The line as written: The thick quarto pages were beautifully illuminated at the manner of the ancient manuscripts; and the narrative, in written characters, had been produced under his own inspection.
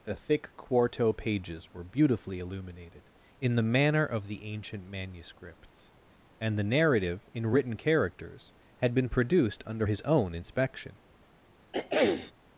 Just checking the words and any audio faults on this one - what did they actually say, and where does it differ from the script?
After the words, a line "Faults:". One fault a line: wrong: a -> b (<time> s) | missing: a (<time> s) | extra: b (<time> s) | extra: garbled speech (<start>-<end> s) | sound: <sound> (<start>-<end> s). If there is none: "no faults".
The thick quarto pages were beautifully illuminated in the manner of the ancient manuscripts; and the narrative, in written characters, had been produced under his own inspection.
Faults:
wrong: at -> in (3.4 s)
sound: throat clearing (11.7-12.3 s)